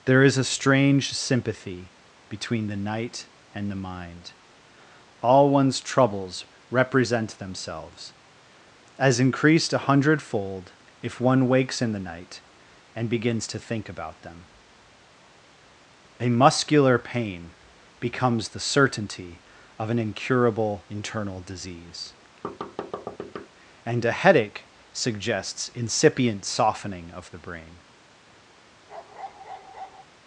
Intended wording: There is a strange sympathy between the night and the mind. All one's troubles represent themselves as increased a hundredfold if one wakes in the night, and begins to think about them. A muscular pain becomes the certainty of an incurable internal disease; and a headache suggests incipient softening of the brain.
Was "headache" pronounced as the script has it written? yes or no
yes